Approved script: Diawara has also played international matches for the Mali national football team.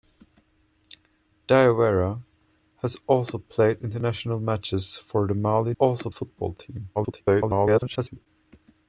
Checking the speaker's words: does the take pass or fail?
fail